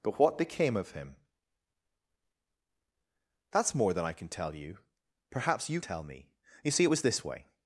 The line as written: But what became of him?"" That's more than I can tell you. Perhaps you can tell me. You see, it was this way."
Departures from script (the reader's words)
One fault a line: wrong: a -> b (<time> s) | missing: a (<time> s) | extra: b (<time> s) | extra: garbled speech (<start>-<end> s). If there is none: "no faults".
missing: can (5.8 s)